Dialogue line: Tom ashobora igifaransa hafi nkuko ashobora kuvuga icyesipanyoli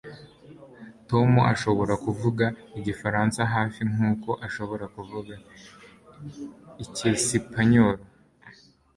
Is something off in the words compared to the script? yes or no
yes